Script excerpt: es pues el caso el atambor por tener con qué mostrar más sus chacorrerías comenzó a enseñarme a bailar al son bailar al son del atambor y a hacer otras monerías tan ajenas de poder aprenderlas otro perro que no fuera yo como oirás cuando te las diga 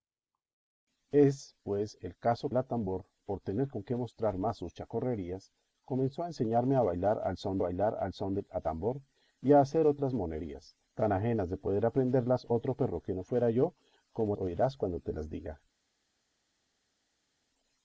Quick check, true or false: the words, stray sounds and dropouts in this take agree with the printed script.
true